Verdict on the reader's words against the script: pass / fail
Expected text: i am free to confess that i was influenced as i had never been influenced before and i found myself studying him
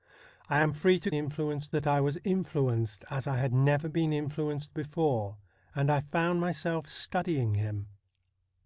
fail